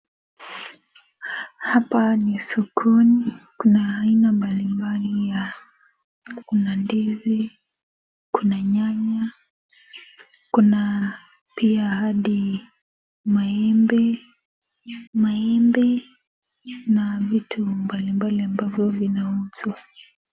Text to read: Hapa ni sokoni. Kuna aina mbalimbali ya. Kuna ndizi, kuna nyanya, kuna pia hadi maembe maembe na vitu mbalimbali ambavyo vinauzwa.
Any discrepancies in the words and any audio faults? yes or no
no